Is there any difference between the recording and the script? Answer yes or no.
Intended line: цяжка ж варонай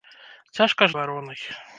no